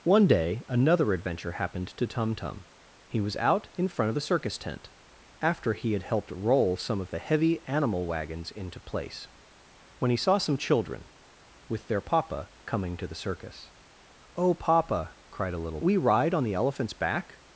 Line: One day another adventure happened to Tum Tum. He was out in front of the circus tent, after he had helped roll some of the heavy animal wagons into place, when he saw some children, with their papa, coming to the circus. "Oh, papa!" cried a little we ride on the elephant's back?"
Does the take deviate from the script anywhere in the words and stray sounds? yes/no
no